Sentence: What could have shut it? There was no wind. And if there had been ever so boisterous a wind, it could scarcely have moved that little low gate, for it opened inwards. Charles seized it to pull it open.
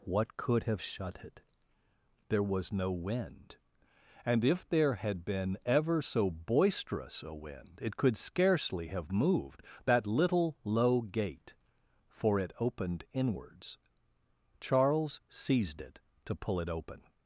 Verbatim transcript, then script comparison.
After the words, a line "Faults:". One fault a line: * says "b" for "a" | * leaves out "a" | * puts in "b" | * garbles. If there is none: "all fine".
What could have shut it? There was no wind. And if there had been ever so boisterous a wind, it could scarcely have moved that little low gate, for it opened inwards. Charles seized it to pull it open.
Faults:
all fine